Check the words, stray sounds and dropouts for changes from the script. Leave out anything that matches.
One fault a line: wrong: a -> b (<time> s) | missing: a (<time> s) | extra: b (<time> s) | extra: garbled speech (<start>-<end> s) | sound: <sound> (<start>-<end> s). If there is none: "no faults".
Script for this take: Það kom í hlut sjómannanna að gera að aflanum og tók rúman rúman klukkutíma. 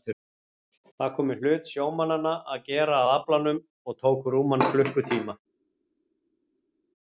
missing: rúman (4.7 s)